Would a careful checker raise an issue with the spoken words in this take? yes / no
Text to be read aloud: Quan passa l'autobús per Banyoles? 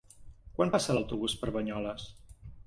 no